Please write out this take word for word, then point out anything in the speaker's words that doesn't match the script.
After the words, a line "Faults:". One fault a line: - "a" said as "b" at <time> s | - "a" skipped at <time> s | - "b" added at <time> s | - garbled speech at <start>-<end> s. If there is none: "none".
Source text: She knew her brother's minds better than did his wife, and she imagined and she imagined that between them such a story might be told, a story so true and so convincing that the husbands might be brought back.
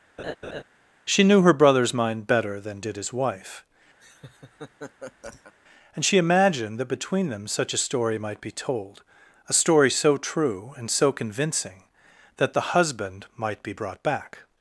She knew her brother's mind better than did his wife, and she imagined that between them such a story might be told, a story so true and so convincing that the husband might be brought back.
Faults:
- "minds" said as "mind" at 1.9 s
- "and she imagined" skipped at 6.8 s
- "husbands" said as "husband" at 12.7 s